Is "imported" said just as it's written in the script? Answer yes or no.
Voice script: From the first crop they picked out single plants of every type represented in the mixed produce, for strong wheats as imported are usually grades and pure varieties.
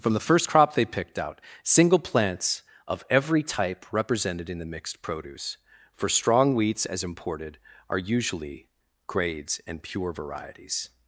yes